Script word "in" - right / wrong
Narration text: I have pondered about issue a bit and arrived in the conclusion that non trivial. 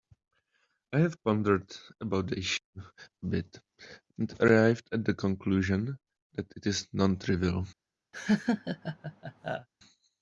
wrong